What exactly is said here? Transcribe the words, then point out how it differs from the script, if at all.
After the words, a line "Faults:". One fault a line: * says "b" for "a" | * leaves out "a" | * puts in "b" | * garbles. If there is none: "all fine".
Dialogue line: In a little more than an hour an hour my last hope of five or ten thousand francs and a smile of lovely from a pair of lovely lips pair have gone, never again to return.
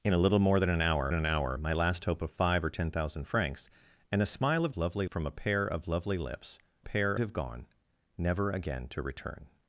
In a little more than an hour an hour my last hope of five or ten thousand francs and a smile of lovely from a pair of lovely lips pair have gone, never again to return.
Faults:
all fine